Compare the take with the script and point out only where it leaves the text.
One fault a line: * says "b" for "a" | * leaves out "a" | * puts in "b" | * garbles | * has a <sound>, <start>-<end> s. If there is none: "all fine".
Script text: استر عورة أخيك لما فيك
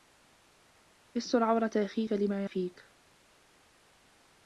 all fine